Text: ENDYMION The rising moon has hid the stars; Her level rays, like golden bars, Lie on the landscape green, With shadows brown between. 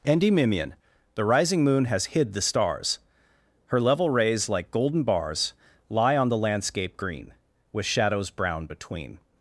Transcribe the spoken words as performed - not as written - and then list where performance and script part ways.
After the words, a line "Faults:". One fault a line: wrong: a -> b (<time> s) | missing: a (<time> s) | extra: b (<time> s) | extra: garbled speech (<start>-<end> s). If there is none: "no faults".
ENDYMION The rising moon has hid the stars; Her level rays, like golden bars, Lie on the landscape green, With shadows brown between.
Faults:
no faults